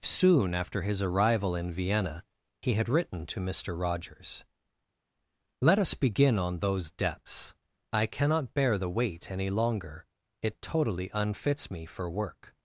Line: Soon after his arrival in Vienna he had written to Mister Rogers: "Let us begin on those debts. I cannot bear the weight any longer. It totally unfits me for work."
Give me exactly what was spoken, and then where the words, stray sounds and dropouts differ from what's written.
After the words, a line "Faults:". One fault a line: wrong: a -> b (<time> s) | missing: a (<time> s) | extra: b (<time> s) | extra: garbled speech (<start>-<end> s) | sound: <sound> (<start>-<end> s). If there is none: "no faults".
Soon after his arrival in Vienna he had written to Mister Rogers: "Let us begin on those debts. I cannot bear the weight any longer. It totally unfits me for work."
Faults:
no faults